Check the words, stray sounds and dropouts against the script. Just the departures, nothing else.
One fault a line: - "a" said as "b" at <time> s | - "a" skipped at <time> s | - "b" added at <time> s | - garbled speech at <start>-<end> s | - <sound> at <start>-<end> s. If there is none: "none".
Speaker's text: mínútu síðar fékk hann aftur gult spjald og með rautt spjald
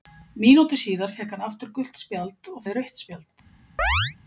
- chirp at 3.8-4.2 s